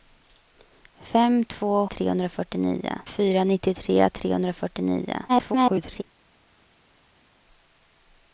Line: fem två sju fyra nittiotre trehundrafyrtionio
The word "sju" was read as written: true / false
false